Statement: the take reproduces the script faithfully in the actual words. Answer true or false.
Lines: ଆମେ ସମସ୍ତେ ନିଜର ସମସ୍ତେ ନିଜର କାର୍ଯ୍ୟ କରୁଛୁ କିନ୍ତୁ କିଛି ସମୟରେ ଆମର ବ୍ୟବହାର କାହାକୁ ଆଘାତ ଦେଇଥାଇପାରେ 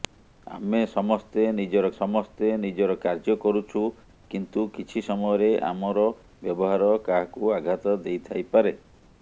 true